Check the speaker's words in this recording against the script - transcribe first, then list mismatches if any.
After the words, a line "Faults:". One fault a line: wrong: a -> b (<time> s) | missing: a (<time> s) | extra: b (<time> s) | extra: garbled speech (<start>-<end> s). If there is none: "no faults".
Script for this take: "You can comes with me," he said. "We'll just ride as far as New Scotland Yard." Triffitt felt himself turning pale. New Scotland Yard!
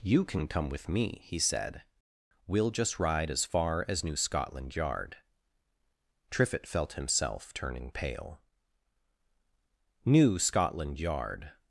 "You can come with me," he said. "We'll just ride as far as New Scotland Yard." Triffitt felt himself turning pale. New Scotland Yard!
Faults:
wrong: comes -> come (0.5 s)